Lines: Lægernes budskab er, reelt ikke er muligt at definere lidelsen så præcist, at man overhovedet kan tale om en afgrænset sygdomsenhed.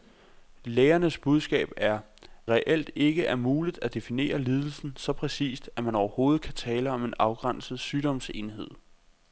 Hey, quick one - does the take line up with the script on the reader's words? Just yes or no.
yes